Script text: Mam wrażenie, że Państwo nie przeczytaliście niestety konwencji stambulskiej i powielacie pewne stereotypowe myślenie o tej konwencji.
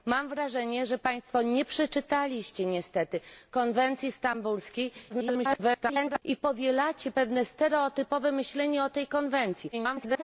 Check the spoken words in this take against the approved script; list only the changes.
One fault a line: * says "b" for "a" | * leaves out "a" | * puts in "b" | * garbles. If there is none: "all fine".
* garbles
* garbles